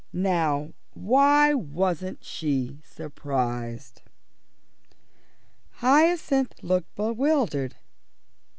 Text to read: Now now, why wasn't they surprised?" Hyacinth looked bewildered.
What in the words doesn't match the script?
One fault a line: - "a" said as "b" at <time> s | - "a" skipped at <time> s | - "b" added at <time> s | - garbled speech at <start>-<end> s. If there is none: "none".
- "now" skipped at 0.7 s
- "they" said as "she" at 2.2 s